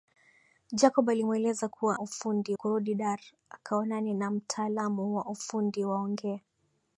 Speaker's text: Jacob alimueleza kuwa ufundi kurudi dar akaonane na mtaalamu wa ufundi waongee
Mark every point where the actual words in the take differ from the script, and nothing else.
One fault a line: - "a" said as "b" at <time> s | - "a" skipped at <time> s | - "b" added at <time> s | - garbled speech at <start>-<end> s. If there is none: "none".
none